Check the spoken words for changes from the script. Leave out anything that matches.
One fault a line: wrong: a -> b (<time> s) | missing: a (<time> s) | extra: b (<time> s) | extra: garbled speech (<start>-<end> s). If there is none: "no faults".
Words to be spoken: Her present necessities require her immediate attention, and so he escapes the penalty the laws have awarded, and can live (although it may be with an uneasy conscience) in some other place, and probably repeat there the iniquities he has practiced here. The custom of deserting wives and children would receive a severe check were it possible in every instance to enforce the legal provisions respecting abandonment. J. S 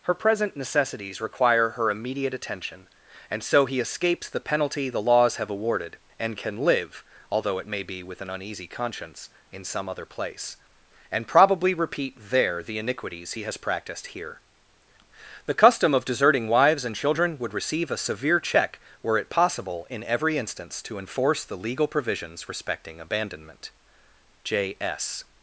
no faults